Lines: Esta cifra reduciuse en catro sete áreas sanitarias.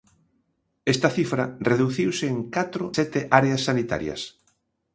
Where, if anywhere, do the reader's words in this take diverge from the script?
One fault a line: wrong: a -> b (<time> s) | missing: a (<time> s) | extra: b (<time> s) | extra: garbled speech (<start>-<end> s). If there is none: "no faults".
no faults